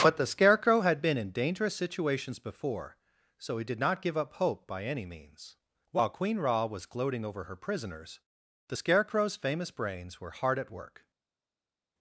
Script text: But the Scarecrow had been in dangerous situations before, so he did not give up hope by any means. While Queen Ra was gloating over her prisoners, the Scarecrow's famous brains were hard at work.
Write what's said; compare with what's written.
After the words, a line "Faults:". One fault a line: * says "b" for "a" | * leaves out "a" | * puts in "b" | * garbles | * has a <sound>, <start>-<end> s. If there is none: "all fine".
But the Scarecrow had been in dangerous situations before, so he did not give up hope by any means. While Queen Ra was gloating over her prisoners, the Scarecrow's famous brains were hard at work.
Faults:
all fine